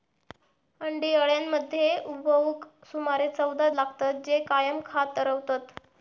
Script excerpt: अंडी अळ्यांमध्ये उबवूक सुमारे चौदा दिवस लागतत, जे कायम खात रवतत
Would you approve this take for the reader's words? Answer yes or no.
no